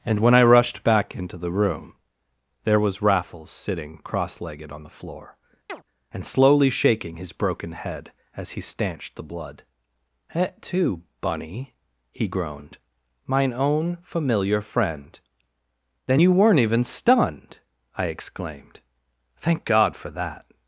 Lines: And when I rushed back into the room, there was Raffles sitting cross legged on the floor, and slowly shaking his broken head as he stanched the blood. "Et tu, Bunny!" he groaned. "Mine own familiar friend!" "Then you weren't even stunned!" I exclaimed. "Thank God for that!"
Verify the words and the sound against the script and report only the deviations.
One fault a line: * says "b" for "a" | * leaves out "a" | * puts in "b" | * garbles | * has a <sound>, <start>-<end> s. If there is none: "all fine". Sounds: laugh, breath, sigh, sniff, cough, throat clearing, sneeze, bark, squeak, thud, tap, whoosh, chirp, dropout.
* has a chirp, 5.7-5.8 s